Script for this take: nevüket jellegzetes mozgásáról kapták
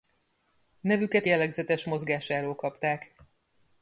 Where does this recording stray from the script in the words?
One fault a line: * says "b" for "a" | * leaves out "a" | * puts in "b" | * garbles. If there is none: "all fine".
all fine